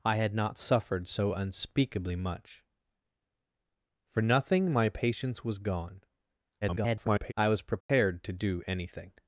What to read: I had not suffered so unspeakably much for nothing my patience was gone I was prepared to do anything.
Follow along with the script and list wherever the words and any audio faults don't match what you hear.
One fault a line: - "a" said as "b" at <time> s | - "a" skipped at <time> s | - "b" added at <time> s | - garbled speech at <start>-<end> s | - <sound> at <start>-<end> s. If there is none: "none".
- garbled speech at 6.6-7.3 s
- dropout at 7.8-7.9 s